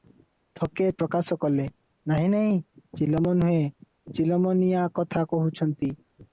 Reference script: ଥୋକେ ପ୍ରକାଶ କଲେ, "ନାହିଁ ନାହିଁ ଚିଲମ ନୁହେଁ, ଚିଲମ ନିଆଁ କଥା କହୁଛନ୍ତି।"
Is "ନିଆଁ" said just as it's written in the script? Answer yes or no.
yes